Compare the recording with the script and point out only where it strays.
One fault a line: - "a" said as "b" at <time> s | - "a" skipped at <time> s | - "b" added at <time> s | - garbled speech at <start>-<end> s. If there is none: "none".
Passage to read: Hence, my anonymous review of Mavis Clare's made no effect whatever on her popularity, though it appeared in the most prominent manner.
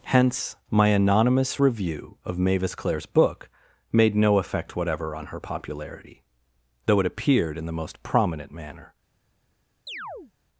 - "book" added at 3.1 s